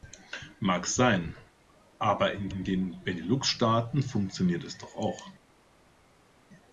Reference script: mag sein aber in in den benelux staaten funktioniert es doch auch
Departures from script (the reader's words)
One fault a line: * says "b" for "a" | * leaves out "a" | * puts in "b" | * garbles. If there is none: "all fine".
all fine